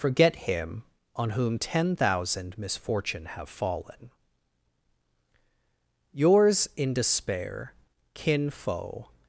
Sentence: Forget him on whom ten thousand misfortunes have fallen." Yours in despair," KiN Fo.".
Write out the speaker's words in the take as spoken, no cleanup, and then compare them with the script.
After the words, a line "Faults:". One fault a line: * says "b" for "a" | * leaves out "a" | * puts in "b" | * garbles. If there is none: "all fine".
Forget him on whom ten thousand misfortune have fallen." Yours in despair," KiN Fo.".
Faults:
* says "misfortune" for "misfortunes"